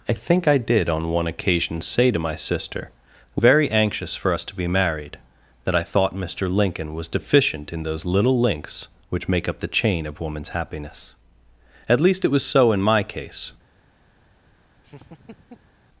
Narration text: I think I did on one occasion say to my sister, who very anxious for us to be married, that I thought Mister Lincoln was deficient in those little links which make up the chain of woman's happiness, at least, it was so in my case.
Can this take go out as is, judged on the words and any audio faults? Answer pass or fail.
fail